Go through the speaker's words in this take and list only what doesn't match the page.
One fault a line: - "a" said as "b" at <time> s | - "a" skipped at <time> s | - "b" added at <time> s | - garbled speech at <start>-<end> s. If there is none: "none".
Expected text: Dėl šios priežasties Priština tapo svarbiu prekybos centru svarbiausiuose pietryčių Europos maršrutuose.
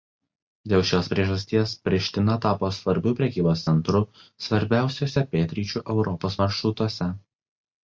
none